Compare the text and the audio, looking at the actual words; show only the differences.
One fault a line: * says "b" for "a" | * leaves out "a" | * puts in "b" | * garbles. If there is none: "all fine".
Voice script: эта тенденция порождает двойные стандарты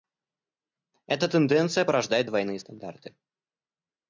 all fine